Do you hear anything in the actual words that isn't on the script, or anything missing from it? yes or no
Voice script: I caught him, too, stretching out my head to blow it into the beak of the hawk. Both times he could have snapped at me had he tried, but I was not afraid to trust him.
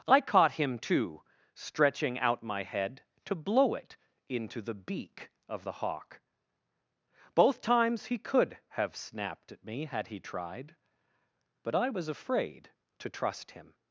yes